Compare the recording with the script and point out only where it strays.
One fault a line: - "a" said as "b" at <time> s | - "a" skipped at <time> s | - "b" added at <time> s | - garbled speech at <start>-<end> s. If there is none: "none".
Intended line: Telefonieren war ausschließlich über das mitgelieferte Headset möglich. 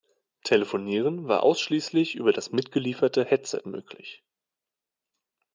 none